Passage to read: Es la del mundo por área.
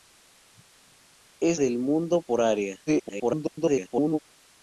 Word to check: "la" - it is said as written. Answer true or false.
false